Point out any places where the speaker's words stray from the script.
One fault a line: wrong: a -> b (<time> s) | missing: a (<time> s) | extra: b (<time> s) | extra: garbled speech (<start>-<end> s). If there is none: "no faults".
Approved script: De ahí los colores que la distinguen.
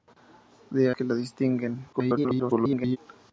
missing: ahí los colores (0.9 s)
extra: garbled speech (1.9-3.0 s)